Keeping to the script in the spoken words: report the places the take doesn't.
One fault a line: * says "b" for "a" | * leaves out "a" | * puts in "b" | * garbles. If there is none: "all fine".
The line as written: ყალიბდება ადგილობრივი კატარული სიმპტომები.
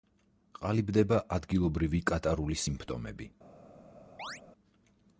all fine